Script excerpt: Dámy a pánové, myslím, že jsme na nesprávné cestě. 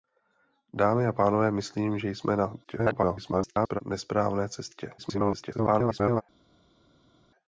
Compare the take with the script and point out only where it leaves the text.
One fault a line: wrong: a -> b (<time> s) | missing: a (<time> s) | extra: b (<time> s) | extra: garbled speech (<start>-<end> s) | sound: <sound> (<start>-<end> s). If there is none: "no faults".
extra: garbled speech (2.6-3.8 s)
extra: garbled speech (5.0-6.2 s)